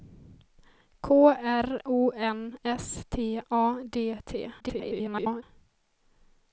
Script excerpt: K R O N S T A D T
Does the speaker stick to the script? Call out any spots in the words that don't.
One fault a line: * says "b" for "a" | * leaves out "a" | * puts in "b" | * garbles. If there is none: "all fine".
* garbles